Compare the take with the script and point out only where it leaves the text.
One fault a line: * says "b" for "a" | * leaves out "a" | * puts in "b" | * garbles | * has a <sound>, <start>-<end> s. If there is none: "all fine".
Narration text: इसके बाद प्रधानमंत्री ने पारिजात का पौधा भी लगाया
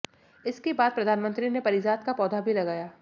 all fine